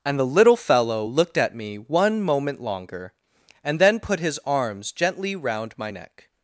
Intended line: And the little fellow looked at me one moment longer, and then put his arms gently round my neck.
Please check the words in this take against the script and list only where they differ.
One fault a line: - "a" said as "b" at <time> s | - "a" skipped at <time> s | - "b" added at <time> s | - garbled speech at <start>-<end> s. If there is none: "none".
none